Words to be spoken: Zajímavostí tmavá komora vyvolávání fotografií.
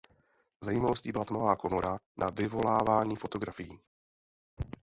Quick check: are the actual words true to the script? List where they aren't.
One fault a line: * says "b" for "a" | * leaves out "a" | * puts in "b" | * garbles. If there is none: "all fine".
* puts in "byla"
* puts in "na"